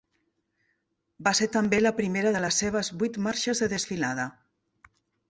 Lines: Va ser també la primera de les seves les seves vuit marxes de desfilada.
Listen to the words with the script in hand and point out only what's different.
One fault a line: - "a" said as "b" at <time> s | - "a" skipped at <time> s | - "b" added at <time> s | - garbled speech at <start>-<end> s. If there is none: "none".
- "les seves" skipped at 2.9 s